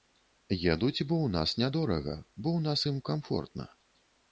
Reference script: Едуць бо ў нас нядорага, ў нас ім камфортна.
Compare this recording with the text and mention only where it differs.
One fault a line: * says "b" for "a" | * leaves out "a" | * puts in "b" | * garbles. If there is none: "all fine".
* puts in "бо"